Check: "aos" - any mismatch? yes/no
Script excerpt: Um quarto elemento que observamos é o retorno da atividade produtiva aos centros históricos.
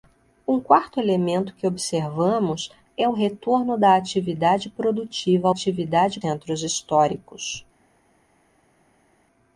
yes